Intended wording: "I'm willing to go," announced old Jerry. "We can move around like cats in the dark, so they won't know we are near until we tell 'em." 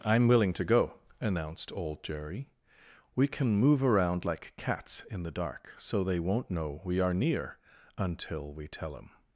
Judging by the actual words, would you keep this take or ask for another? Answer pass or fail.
pass